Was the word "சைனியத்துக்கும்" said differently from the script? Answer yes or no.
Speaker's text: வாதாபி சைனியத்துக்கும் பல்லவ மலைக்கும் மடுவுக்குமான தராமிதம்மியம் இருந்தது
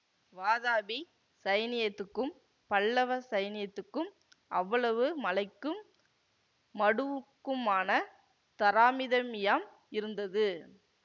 no